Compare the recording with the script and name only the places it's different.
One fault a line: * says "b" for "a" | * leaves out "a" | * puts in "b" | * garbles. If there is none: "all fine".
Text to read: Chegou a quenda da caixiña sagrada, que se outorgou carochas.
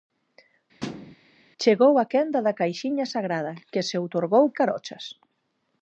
all fine